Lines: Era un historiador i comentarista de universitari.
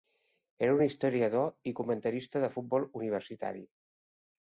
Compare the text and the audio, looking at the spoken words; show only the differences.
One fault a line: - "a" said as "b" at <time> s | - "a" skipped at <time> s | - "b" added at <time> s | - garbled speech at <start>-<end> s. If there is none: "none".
- "futbol" added at 2.6 s